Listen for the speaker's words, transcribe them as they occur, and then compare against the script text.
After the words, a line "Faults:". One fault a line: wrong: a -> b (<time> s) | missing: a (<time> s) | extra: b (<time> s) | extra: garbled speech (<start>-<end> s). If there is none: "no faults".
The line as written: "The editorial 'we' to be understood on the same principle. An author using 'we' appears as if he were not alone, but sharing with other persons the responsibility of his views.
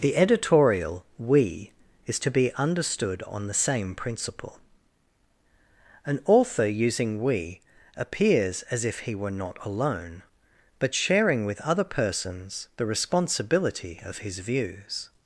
"The editorial 'we' is to be understood on the same principle. An author using 'we' appears as if he were not alone, but sharing with other persons the responsibility of his views.
Faults:
extra: is (2.1 s)